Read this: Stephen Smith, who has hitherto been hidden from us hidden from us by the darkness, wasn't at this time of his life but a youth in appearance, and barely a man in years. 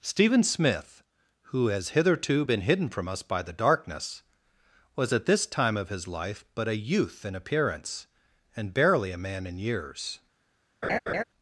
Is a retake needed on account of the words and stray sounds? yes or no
yes